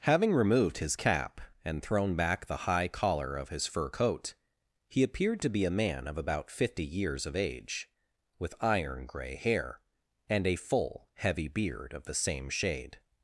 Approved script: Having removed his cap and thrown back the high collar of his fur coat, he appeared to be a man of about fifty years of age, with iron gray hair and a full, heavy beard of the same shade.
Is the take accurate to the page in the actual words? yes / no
yes